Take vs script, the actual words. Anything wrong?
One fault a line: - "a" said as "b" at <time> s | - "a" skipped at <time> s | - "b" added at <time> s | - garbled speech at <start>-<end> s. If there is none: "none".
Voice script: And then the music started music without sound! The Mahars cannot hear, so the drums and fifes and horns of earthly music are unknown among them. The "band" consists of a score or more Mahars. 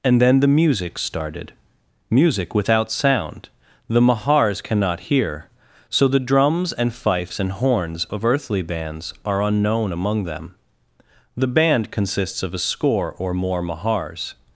- "music" said as "bands" at 8.6 s